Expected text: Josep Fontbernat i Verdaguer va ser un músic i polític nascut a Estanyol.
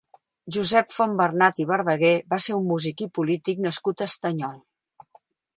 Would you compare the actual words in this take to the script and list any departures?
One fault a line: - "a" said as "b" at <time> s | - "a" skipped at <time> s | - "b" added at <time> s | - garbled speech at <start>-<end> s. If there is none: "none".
none